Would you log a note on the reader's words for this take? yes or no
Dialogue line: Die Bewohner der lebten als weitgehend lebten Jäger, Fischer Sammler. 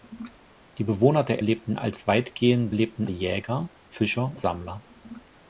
no